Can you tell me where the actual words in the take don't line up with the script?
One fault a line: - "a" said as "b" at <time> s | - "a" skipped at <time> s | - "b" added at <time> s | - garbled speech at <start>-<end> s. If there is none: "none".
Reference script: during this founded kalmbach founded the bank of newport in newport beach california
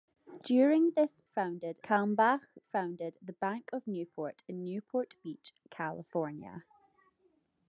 none